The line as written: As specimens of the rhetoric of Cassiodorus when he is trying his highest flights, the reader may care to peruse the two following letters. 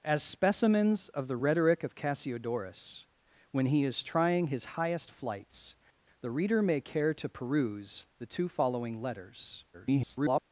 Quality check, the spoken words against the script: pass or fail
fail